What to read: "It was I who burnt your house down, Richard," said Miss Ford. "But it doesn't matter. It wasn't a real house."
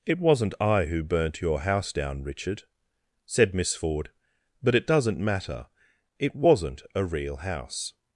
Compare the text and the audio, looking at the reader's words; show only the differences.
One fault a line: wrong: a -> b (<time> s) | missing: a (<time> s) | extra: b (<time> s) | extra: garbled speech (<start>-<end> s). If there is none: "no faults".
wrong: was -> wasn't (0.2 s)